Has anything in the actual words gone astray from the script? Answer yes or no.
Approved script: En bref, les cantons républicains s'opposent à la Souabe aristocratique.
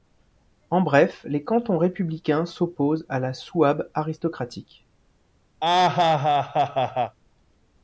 no